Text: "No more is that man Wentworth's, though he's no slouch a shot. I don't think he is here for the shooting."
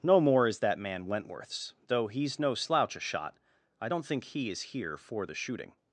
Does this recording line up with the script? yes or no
yes